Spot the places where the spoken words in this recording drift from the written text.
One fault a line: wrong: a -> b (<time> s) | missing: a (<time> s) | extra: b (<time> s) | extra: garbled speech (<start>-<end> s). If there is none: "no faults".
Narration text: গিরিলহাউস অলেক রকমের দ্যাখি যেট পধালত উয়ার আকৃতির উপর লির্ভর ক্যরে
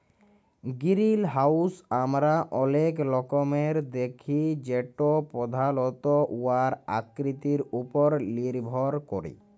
extra: আমরা (2.0 s)